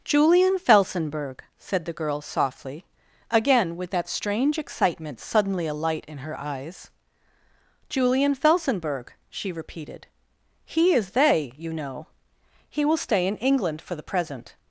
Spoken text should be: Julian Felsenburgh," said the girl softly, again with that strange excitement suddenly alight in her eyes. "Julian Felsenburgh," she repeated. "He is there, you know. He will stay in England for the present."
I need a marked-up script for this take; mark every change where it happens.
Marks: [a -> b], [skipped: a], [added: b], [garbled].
Julian Felsenburgh," said the girl softly, again with that strange excitement suddenly alight in her eyes. "Julian Felsenburgh," she repeated. "He is [there, -> they] you know. He will stay in England for the present."